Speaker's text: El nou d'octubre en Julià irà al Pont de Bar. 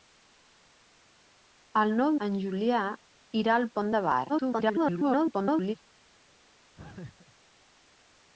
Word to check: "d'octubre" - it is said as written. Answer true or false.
false